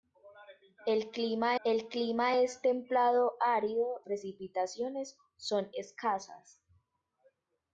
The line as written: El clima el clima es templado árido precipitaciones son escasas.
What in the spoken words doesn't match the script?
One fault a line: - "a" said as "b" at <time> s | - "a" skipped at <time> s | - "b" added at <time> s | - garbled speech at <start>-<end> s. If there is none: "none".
none